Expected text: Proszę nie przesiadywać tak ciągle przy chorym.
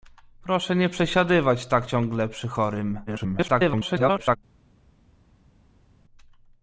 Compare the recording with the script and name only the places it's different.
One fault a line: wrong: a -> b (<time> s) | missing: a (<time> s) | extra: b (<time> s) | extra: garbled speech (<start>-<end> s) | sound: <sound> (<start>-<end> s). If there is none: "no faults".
extra: garbled speech (3.1-4.4 s)